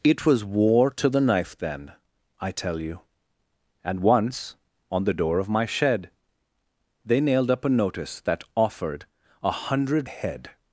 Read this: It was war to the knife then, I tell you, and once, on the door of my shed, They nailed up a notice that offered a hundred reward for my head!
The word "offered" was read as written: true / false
true